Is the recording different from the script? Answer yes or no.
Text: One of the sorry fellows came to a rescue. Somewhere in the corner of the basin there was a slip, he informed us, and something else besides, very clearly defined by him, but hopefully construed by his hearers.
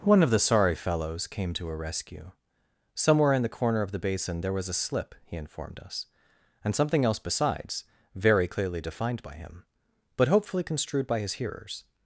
no